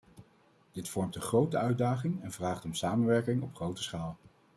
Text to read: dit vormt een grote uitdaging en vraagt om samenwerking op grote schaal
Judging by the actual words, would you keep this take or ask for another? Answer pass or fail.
pass